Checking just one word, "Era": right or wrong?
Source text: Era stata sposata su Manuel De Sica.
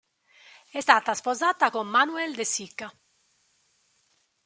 wrong